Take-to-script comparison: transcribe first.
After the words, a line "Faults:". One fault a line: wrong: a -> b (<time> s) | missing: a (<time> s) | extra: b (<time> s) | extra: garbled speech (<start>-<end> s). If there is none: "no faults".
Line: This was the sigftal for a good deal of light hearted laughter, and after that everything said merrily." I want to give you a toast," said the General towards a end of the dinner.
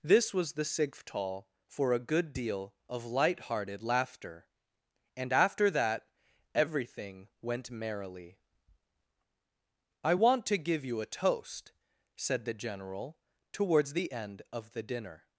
This was the sigftal for a good deal of light hearted laughter, and after that everything went merrily." I want to give you a toast," said the General towards the end of the dinner.
Faults:
wrong: said -> went (7.4 s)
wrong: a -> the (13.9 s)